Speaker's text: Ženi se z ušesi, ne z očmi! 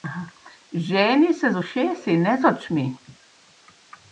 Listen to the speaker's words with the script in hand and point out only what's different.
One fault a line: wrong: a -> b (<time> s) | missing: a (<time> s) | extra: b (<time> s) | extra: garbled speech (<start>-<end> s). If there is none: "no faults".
no faults